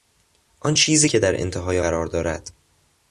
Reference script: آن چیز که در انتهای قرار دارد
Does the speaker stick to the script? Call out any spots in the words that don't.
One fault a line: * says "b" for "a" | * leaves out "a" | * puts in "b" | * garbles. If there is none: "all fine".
all fine